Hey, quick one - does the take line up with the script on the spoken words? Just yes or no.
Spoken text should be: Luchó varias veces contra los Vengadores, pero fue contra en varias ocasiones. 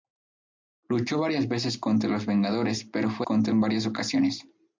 yes